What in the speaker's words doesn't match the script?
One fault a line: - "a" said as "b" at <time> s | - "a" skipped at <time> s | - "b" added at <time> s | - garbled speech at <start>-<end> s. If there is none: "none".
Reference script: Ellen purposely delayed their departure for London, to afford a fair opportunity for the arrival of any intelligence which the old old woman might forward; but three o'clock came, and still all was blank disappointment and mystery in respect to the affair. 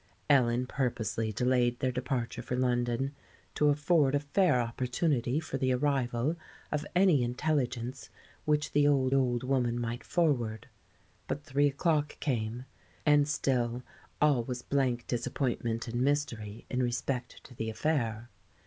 none